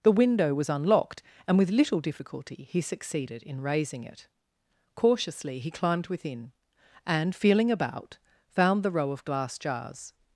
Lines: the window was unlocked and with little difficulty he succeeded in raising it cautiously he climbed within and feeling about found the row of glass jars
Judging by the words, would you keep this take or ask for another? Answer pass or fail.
pass